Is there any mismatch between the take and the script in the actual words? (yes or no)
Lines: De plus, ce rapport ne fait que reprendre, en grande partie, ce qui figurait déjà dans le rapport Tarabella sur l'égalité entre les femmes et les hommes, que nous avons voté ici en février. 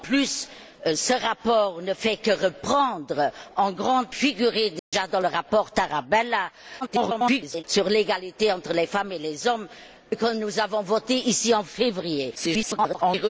yes